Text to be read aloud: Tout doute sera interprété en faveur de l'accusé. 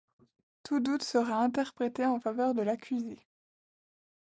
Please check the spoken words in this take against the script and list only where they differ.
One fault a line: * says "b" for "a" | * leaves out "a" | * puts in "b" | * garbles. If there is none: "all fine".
all fine